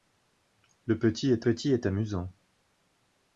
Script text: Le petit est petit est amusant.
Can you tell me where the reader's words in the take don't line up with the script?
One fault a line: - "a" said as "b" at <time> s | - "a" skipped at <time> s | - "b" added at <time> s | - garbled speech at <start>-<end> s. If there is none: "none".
none